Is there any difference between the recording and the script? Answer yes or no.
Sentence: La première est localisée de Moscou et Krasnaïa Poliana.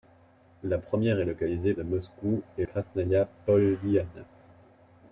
no